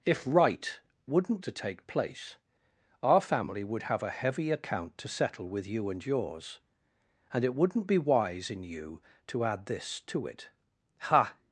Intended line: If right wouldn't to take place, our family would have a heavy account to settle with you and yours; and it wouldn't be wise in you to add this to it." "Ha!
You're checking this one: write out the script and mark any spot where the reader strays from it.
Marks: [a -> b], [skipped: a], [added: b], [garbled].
If right wouldn't to take place, our family would have a heavy account to settle with you and yours; and it wouldn't be wise in you to add this to it." "Ha!